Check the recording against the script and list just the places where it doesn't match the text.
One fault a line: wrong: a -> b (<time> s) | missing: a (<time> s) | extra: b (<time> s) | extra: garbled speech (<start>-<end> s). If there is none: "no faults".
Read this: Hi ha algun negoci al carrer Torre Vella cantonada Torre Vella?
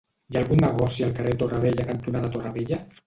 no faults